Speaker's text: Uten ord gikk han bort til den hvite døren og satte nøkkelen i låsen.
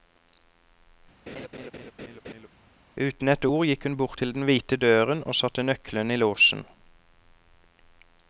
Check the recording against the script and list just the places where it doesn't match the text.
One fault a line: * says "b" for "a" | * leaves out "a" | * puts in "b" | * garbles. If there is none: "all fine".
* puts in "et"
* says "hun" for "han"